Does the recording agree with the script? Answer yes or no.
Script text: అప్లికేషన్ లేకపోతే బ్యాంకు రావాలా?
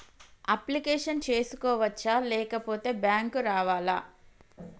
no